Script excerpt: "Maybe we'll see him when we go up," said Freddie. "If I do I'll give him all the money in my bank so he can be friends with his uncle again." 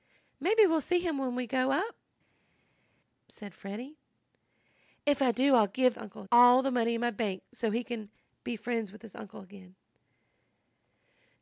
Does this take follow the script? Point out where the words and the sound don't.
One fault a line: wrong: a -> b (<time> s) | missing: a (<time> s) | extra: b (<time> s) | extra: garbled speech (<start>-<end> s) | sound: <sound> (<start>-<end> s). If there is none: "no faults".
wrong: him -> uncle (6.0 s)